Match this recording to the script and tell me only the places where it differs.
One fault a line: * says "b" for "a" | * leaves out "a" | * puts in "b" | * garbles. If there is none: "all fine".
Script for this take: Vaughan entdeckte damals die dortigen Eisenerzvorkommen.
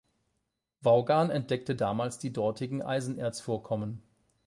all fine